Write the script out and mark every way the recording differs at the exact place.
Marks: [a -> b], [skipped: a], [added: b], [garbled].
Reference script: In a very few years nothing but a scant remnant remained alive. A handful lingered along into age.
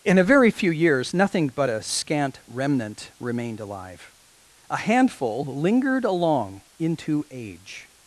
In a very few years nothing but a scant remnant remained alive. A handful lingered along into age.